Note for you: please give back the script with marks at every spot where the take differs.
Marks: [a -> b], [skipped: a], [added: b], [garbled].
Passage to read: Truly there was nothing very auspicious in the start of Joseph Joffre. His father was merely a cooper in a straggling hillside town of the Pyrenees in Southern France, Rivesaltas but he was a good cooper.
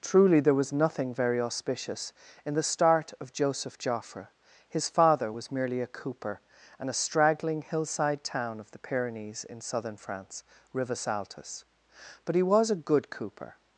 Truly there was nothing very auspicious in the start of Joseph Joffre. His father was merely a cooper [in -> and] a straggling hillside town of the Pyrenees in Southern France, Rivesaltas but he was a good cooper.